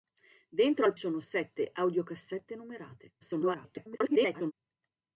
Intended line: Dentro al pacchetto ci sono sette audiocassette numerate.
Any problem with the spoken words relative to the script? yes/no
yes